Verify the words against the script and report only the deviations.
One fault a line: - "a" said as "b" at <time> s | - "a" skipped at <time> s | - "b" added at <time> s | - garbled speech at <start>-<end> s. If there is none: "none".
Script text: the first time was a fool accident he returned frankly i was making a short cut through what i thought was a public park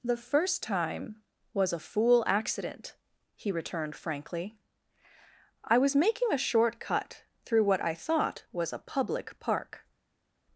none